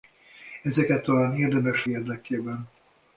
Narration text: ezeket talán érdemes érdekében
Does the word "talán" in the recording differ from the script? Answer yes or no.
no